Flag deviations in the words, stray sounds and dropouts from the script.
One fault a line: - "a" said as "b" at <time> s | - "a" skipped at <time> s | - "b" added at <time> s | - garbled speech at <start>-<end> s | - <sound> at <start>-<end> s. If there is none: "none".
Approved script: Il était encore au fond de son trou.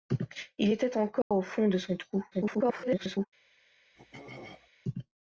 - dropout at 1.2-1.3 s
- garbled speech at 2.3-3.3 s
- throat clearing at 4.0-4.7 s